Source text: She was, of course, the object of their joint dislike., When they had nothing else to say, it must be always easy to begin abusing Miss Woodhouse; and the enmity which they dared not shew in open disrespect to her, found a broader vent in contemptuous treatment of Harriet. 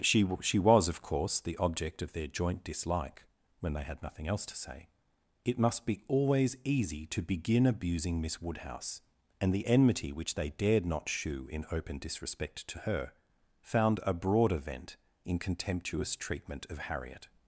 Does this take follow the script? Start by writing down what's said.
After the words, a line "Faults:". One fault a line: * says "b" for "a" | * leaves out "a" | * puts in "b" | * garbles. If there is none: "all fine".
She she was, of course, the object of their joint dislike., When they had nothing else to say, it must be always easy to begin abusing Miss Woodhouse; and the enmity which they dared not shew in open disrespect to her, found a broader vent in contemptuous treatment of Harriet.
Faults:
* puts in "she"